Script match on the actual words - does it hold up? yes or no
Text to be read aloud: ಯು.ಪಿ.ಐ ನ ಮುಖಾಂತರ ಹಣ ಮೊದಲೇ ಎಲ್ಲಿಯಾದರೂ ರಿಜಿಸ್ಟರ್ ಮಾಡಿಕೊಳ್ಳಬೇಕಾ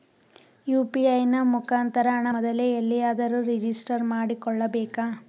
yes